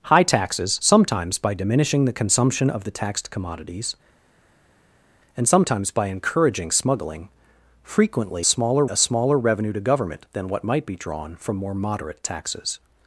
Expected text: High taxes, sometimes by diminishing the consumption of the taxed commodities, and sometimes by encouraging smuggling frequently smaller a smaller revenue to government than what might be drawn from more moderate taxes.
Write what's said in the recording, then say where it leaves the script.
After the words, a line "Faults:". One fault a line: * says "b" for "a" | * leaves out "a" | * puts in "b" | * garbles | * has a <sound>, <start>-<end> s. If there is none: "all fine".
High taxes, sometimes by diminishing the consumption of the taxed commodities, and sometimes by encouraging smuggling frequently smaller a smaller revenue to government than what might be drawn from more moderate taxes.
Faults:
all fine